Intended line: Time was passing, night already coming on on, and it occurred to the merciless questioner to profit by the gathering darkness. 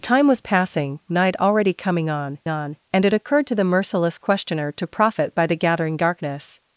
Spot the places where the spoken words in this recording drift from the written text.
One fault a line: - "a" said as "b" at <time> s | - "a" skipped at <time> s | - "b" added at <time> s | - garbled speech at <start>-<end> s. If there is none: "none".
none